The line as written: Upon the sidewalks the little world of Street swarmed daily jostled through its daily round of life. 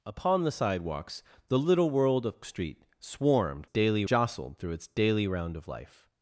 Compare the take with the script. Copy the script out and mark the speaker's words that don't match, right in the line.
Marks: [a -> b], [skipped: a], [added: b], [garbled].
Upon the sidewalks the little world of Street swarmed daily jostled through its daily round of life.